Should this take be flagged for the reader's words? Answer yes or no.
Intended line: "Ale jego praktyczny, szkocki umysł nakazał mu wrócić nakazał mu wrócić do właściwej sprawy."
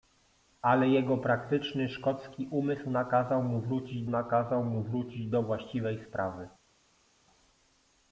no